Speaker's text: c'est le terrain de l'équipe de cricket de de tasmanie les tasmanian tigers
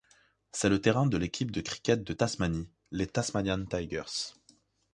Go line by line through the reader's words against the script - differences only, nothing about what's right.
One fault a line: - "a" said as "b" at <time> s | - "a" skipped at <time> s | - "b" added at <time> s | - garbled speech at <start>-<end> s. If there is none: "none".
- "de" skipped at 2.1 s